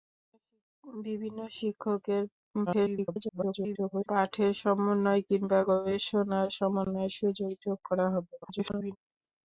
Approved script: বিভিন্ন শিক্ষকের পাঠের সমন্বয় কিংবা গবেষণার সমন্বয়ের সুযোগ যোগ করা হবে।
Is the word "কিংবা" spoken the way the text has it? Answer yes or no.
yes